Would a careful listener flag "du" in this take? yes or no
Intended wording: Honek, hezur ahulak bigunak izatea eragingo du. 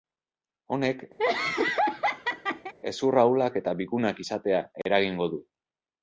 no